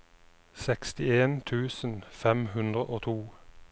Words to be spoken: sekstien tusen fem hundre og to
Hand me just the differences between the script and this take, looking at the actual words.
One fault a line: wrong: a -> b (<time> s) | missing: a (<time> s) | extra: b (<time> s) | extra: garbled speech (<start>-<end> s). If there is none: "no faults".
no faults